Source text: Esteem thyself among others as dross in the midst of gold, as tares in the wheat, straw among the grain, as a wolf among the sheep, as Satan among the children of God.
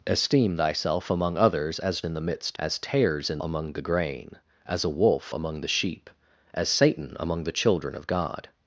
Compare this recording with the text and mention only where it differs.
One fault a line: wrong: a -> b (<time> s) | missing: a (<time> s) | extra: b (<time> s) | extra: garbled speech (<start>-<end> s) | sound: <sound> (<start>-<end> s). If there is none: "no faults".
missing: dross (2.0 s)
missing: of gold (2.6 s)
missing: the wheat straw (3.4 s)